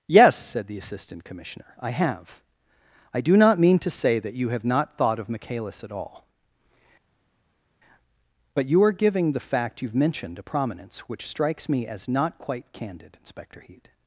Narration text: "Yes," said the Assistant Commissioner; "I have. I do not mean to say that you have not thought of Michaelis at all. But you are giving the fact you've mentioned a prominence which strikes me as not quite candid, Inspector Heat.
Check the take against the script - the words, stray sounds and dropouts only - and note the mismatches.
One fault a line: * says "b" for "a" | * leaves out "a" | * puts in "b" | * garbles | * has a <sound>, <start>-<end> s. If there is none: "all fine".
all fine